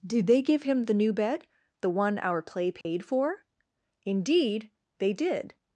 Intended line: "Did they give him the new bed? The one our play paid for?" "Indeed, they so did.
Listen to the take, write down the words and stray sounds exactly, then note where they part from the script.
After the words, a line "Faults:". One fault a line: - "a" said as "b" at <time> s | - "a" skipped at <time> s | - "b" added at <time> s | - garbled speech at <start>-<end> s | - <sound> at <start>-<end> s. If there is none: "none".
"Did they give him the new bed? The one our play paid for?" "Indeed, they did.
Faults:
- dropout at 2.8-2.8 s
- "so" skipped at 5.1 s